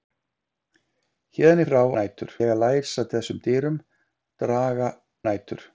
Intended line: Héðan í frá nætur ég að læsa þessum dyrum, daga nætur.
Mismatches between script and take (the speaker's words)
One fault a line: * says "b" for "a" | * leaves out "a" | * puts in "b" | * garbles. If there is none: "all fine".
all fine